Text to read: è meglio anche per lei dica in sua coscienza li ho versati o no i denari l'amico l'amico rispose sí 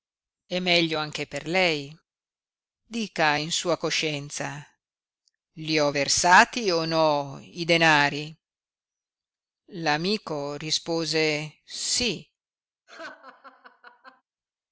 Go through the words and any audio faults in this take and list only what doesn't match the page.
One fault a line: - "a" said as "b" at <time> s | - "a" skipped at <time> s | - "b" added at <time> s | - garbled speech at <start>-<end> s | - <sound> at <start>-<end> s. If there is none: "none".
- "l'amico" skipped at 10.5 s
- laugh at 12.9-14.2 s